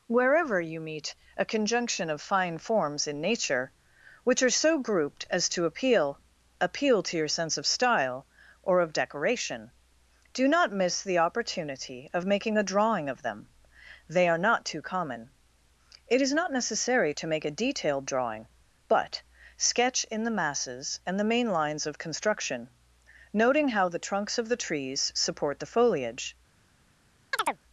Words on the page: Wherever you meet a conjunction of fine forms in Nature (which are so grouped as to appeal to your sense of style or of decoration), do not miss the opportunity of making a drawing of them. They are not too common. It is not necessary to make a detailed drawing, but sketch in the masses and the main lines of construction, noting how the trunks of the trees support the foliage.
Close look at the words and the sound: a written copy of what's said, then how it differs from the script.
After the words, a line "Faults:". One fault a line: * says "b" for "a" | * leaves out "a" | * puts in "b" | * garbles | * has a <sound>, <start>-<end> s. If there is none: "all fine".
Wherever you meet a conjunction of fine forms in Nature (which are so grouped as to appeal appeal to your sense of style or of decoration), do not miss the opportunity of making a drawing of them. They are not too common. It is not necessary to make a detailed drawing, but sketch in the masses and the main lines of construction, noting how the trunks of the trees support the foliage.
Faults:
* puts in "appeal"
* has a chirp, 27.3-27.6 s